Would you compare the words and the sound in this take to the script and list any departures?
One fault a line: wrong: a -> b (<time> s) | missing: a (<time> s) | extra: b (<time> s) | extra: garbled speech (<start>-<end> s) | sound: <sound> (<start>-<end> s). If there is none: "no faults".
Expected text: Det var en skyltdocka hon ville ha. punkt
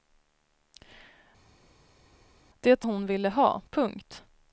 missing: var en skyltdocka (2.9 s)